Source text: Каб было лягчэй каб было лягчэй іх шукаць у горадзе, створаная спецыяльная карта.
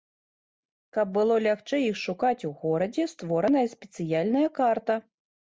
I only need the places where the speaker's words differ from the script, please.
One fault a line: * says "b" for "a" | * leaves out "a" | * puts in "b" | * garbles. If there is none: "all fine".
* leaves out "каб было лягчэй"